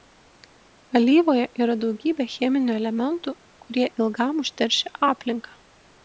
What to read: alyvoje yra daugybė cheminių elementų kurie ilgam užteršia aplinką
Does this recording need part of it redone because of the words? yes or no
no